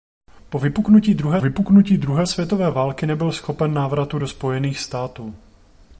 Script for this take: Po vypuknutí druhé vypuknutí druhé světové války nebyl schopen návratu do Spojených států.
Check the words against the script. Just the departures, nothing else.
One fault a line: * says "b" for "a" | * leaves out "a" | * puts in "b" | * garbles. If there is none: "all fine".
all fine